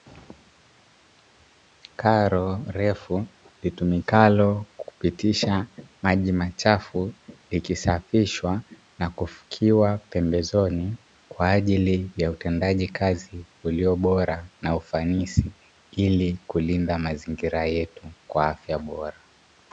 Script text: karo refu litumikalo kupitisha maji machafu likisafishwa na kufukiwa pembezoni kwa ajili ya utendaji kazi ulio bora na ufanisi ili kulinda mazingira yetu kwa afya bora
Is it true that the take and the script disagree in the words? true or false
false